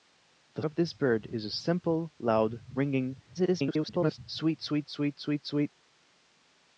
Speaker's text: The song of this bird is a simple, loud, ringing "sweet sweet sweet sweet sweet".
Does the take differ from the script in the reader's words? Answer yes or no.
yes